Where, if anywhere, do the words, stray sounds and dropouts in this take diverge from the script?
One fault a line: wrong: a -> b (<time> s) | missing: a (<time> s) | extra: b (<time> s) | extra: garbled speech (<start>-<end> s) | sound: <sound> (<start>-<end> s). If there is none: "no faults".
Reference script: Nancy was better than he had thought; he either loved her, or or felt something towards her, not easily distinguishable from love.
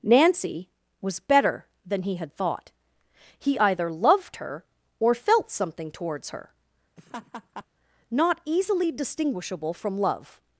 missing: or (5.1 s)
sound: laugh (7.0-7.7 s)